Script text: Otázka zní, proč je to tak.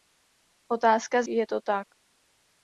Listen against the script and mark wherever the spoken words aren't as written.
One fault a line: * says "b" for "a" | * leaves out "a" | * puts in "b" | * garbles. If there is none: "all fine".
* leaves out "zní proč"